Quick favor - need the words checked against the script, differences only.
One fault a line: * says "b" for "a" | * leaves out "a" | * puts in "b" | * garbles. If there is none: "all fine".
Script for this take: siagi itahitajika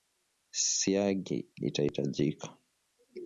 all fine